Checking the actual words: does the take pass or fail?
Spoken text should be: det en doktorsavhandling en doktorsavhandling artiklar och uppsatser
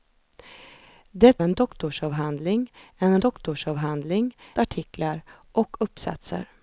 pass